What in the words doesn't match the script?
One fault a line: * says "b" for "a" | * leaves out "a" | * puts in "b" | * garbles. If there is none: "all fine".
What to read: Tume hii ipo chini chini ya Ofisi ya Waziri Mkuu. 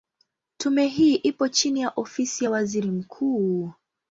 * leaves out "chini"